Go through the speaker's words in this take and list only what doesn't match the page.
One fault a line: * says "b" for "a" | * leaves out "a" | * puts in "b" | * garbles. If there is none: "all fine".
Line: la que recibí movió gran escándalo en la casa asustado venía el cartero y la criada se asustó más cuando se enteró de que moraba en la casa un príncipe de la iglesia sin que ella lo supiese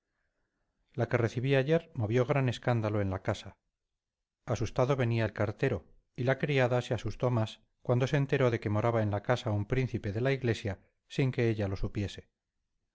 * puts in "ayer"